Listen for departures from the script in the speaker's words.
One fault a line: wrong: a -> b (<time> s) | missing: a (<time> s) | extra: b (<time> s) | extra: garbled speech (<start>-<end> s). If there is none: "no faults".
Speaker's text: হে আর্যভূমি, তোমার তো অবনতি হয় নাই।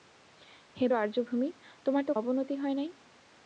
no faults